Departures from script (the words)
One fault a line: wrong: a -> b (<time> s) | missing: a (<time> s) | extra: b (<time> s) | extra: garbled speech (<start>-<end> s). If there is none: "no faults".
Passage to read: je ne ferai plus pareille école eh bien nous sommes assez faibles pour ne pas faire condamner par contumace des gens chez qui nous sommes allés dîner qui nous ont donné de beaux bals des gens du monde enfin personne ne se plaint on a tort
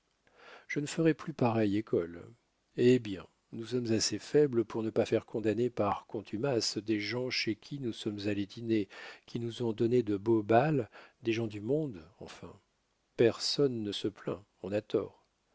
no faults